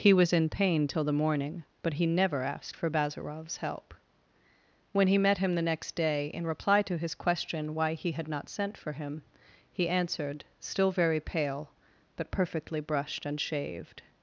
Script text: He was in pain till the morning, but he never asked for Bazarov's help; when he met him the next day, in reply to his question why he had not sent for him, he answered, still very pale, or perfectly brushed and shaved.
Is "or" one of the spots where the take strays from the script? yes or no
yes